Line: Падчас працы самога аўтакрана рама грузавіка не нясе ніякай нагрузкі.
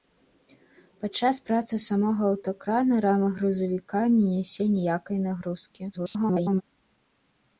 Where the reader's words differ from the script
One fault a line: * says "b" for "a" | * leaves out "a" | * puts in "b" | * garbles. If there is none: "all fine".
* garbles